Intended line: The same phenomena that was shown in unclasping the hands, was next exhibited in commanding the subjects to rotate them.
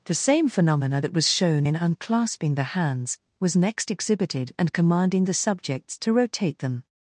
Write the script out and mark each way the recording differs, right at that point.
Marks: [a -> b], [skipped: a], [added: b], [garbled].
The same phenomena that was shown in unclasping the hands, was next exhibited [in -> and] commanding the subjects to rotate them.